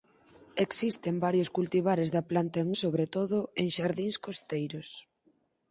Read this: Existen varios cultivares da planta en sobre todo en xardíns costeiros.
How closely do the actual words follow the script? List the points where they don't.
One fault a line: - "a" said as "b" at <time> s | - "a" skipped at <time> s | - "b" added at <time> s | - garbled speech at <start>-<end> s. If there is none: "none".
none